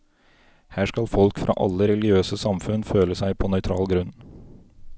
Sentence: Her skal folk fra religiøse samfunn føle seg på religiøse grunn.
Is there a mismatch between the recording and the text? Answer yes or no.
yes